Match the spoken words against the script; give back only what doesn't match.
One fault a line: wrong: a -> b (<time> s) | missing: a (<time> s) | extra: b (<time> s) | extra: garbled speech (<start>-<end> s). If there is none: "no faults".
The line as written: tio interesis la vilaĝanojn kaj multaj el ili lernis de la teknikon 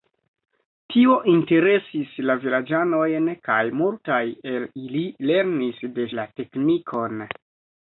no faults